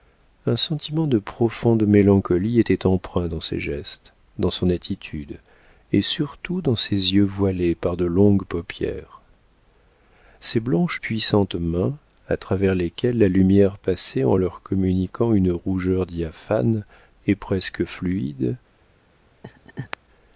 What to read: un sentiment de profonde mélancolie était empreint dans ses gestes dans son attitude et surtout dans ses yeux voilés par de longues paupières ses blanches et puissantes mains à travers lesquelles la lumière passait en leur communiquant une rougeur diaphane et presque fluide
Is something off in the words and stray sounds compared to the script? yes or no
yes